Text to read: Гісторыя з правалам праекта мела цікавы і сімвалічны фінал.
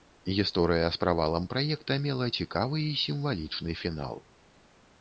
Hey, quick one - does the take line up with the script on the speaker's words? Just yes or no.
yes